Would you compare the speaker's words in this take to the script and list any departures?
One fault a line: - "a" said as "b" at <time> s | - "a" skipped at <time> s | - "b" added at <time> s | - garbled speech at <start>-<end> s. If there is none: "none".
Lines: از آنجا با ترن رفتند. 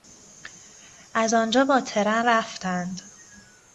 none